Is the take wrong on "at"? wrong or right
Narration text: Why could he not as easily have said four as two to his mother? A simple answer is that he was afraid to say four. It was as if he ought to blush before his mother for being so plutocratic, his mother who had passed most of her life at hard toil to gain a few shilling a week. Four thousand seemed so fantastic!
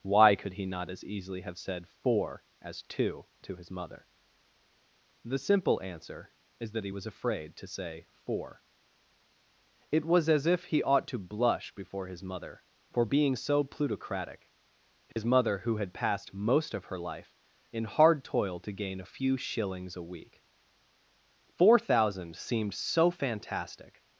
wrong